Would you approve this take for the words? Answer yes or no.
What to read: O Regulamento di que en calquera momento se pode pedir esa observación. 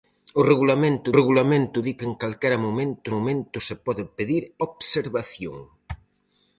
no